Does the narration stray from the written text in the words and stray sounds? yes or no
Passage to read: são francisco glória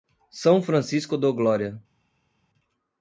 yes